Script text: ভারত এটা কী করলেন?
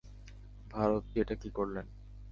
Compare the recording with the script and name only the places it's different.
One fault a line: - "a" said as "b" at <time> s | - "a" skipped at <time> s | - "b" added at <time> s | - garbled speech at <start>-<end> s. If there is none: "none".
none